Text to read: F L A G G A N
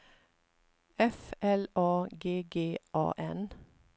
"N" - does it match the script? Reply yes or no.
yes